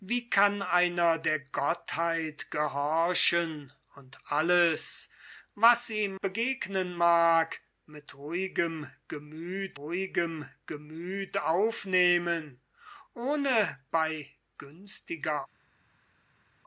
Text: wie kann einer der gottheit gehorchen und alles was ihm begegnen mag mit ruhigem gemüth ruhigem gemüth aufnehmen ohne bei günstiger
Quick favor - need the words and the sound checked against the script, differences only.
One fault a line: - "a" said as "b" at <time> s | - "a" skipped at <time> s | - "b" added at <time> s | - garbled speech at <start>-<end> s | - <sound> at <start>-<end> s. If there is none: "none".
none